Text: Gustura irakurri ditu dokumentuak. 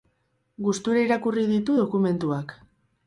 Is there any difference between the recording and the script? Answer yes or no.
no